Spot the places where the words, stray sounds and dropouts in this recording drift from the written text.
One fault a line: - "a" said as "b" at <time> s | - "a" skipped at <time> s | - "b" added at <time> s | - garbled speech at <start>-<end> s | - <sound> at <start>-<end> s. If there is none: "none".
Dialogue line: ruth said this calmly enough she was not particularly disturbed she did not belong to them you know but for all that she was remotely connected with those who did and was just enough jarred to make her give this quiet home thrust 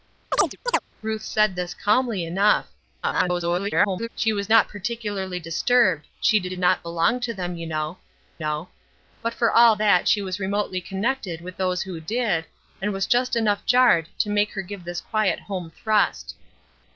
- chirp at 0.3-0.8 s
- garbled speech at 3.0-4.1 s
- "did" added at 6.5 s
- "know" added at 8.4 s